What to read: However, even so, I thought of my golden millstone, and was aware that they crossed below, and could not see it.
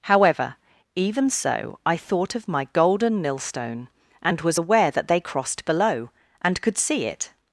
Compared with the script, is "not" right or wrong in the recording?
wrong